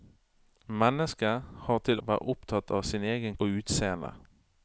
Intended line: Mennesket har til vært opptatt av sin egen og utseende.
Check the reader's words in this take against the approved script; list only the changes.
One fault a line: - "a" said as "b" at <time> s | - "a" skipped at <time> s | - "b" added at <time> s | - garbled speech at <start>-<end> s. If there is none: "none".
none